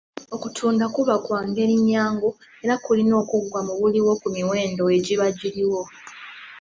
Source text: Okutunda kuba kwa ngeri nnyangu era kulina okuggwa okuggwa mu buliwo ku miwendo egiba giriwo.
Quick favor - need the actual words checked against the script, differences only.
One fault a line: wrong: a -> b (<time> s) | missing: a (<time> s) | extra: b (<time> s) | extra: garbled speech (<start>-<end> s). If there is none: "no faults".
missing: okuggwa (3.6 s)